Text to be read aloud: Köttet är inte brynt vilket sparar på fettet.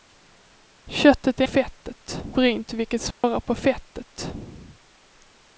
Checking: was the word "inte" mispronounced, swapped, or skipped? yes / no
yes